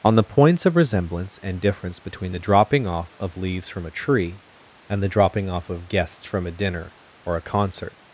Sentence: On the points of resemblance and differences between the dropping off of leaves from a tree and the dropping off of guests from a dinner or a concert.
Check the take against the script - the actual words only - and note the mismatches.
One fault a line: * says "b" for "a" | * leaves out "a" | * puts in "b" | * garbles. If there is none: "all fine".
* says "difference" for "differences"